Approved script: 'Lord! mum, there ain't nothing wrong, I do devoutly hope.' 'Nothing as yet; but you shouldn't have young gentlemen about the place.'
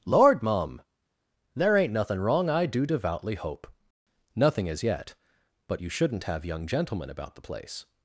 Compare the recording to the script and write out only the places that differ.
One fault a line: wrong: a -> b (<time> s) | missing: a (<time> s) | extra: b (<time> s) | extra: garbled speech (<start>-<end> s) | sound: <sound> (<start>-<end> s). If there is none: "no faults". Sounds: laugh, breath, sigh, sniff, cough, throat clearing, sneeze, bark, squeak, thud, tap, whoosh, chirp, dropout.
no faults